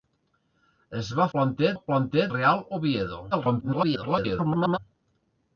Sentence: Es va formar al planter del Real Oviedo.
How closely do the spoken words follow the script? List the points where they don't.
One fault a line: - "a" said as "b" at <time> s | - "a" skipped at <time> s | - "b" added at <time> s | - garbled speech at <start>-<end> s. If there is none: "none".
- "formar" said as "planter" at 1.4 s
- "del" skipped at 2.3 s
- garbled speech at 3.3-4.8 s